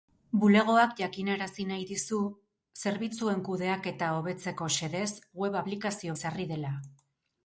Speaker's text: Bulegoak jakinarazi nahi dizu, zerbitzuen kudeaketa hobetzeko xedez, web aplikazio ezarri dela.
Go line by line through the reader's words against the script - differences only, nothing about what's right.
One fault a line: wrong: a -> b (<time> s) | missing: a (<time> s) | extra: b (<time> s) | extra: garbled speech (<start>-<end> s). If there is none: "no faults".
no faults